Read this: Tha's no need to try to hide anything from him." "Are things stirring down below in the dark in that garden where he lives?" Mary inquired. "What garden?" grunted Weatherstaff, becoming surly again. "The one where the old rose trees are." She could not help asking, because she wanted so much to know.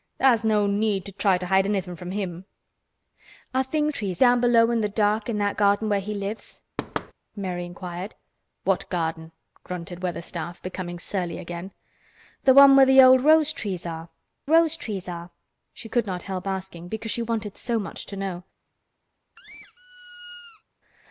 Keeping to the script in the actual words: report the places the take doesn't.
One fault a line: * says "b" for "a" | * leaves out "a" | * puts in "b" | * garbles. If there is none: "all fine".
* says "trees" for "stirring"
* puts in "rose trees are"